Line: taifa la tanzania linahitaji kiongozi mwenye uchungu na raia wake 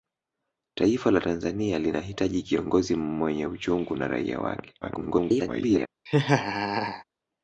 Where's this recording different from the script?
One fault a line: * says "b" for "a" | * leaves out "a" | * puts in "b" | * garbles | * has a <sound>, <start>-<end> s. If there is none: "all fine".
* garbles
* has a laugh, 6.1-7.0 s